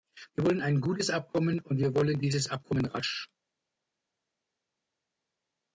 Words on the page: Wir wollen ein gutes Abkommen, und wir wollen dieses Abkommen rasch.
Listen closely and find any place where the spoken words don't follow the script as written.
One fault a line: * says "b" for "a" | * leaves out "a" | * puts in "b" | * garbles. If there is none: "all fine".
all fine